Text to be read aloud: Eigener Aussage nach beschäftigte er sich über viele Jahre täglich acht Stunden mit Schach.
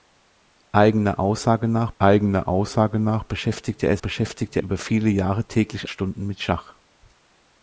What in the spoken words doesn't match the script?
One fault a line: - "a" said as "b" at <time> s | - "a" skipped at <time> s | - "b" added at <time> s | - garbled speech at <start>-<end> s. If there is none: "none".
- "eigener Aussage nach" added at 2.0 s
- "sich" said as "beschäftigte" at 4.0 s
- "acht" skipped at 5.9 s